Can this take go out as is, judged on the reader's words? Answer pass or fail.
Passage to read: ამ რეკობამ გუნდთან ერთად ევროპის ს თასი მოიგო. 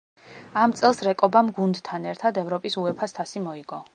fail